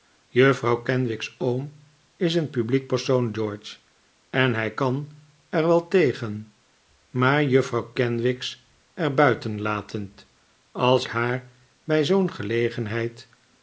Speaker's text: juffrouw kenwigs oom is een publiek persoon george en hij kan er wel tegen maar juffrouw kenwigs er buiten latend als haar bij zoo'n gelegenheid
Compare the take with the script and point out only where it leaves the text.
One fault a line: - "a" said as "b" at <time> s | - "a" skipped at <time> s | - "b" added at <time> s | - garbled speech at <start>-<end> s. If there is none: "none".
none